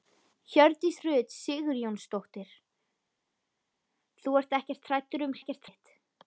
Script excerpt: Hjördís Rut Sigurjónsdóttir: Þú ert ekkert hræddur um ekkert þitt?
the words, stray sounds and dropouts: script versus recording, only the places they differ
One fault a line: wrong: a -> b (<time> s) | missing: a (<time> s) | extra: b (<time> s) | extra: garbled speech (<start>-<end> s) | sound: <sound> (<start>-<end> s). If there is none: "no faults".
no faults